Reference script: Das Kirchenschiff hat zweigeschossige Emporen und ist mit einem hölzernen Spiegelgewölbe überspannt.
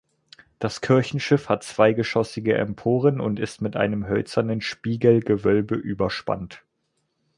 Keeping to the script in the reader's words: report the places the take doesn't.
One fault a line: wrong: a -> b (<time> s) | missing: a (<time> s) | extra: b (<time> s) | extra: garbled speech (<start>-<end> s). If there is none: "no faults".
no faults